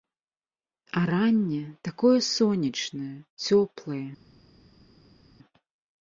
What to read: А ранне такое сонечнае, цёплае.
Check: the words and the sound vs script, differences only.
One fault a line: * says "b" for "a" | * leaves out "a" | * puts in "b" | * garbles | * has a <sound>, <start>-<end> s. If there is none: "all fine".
all fine